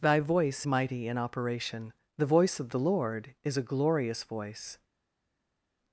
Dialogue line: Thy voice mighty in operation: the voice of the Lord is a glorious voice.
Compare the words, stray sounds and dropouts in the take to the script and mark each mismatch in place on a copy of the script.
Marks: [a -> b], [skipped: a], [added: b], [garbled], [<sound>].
Thy voice mighty in operation: the voice of the Lord is a glorious voice.